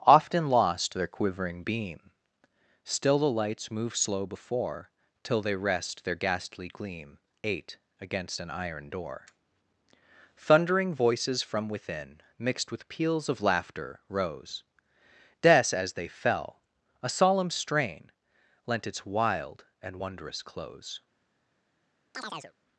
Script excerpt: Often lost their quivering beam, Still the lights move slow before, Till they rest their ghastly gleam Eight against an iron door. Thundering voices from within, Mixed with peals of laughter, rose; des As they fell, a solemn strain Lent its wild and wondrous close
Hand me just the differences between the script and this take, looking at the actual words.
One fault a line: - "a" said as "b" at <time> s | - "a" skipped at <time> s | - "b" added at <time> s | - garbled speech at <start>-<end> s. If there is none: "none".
none